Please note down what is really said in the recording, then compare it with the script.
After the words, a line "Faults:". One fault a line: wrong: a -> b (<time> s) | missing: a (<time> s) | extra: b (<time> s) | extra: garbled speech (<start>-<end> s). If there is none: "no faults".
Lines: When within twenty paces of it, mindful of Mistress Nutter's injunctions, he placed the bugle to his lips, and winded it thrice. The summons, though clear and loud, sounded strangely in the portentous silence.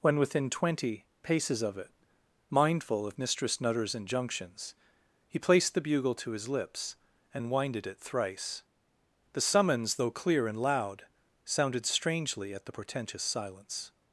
When within twenty paces of it, mindful of Mistress Nutter's injunctions, he placed the bugle to his lips, and winded it thrice. The summons, though clear and loud, sounded strangely at the portentous silence.
Faults:
wrong: in -> at (12.5 s)